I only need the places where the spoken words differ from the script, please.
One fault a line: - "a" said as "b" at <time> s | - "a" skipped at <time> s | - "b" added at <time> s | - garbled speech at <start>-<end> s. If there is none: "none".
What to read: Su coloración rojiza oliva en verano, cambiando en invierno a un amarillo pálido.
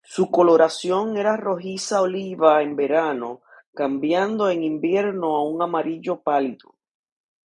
- "era" added at 1.1 s